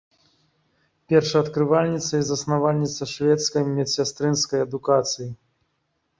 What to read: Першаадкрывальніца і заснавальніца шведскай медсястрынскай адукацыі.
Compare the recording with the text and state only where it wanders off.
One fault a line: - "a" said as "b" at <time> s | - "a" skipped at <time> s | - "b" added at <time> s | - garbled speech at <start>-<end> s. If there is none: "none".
none